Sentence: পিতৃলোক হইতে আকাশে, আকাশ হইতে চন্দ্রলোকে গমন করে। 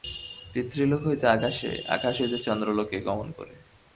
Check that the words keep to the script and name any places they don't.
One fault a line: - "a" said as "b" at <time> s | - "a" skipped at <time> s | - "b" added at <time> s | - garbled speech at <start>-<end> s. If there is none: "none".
none